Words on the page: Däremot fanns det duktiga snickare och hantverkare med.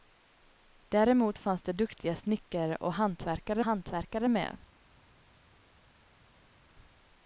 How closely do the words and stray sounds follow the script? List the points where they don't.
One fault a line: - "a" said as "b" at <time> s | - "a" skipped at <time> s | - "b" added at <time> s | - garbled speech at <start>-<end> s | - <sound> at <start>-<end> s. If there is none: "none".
- "hantverkare" added at 3.6 s